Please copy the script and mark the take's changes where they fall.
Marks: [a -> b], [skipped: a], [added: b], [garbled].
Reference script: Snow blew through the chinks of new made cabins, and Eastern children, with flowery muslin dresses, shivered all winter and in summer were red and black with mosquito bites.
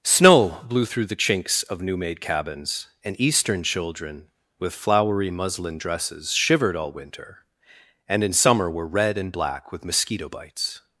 Snow blew through the chinks of new made cabins, and Eastern children, with flowery muslin dresses, shivered all winter and in summer were red and black with mosquito bites.